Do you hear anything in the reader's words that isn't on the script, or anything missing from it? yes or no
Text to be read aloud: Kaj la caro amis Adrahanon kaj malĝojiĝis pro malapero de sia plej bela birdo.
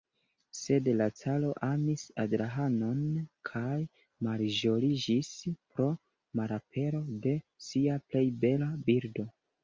yes